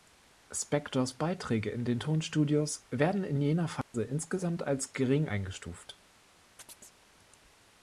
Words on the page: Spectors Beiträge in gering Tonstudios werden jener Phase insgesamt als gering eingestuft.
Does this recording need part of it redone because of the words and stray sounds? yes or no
yes